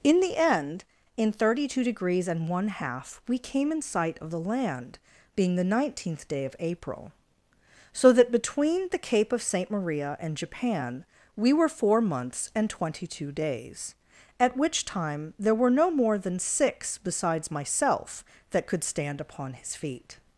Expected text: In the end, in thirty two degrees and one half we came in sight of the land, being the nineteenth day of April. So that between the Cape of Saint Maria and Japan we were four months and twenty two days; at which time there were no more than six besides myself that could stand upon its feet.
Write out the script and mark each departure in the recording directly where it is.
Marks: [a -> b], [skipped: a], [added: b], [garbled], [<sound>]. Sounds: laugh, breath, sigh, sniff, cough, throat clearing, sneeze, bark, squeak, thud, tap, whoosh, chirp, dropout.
In the end, in thirty two degrees and one half we came in sight of the land, being the nineteenth day of April. So that between the Cape of Saint Maria and Japan we were four months and twenty two days; at which time there were no more than six besides myself that could stand upon [its -> his] feet.